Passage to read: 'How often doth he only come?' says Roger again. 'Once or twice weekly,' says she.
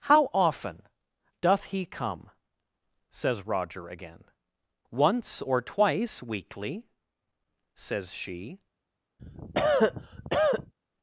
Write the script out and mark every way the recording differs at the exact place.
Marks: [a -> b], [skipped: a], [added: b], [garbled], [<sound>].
'How often doth he [skipped: only] come?' says Roger again. 'Once or twice weekly,' says she. [cough]